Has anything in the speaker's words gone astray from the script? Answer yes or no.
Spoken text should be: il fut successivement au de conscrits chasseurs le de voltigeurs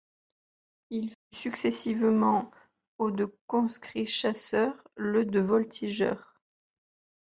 no